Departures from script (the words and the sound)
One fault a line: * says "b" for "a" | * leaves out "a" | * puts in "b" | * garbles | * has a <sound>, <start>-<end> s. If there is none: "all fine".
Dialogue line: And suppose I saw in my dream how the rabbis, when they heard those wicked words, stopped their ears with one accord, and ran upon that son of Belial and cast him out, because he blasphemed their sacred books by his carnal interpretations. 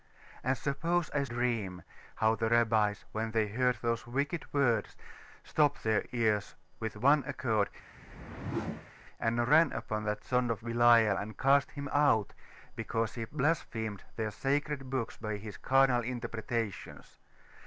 * leaves out "saw in my"
* has a whoosh, 7.9-8.9 s